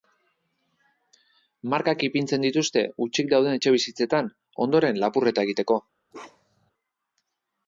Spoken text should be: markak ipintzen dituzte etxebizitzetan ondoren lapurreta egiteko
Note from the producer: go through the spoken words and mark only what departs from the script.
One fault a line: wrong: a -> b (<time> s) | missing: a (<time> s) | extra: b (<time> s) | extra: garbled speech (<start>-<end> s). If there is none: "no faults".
extra: hutsik dauden (3.0 s)